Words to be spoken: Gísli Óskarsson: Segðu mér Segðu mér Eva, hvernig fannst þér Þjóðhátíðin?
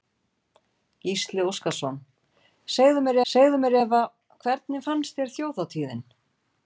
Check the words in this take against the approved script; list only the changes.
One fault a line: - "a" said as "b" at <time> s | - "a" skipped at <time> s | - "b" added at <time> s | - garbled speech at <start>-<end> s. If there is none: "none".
none